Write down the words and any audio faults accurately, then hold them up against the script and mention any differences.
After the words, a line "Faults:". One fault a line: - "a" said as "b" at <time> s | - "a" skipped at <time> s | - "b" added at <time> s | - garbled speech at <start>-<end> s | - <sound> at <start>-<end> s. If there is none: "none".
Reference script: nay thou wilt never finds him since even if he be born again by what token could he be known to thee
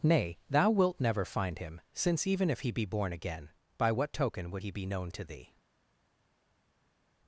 nay thou wilt never find him since even if he be born again by what token would he be known to thee
Faults:
- "finds" said as "find" at 1.2 s
- "could" said as "would" at 4.5 s